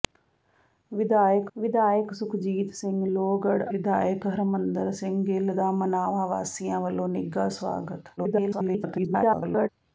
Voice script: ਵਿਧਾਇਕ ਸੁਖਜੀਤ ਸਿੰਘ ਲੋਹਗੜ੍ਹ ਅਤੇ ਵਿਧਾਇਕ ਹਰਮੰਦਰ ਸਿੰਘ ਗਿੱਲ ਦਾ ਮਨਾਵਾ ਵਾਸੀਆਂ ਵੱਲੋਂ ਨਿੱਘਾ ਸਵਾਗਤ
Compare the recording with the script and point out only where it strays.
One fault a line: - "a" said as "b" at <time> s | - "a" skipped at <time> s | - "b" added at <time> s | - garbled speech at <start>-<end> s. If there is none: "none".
- "ਵਿਧਾਇਕ" added at 1.6 s
- "ਅਤੇ" skipped at 3.6 s
- garbled speech at 8.2-9.7 s